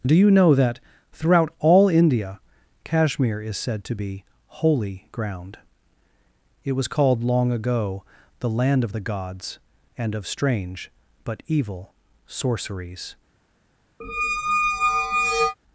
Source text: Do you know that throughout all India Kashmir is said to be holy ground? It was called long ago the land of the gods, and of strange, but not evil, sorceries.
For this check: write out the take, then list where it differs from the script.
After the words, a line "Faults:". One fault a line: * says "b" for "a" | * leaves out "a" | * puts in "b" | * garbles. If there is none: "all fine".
Do you know that throughout all India Kashmir is said to be holy ground? It was called long ago the land of the gods, and of strange, but evil, sorceries.
Faults:
* leaves out "not"